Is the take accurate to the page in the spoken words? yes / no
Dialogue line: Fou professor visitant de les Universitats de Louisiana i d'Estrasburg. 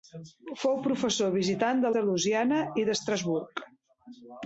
no